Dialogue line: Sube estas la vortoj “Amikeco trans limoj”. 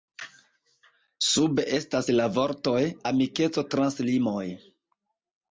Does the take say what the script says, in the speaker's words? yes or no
yes